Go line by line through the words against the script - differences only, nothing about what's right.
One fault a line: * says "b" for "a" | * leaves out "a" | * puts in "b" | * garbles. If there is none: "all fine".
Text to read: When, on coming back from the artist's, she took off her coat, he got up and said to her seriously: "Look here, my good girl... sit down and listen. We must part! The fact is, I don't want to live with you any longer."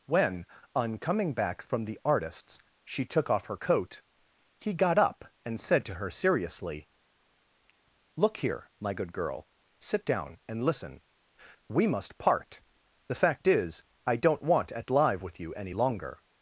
* says "at" for "to"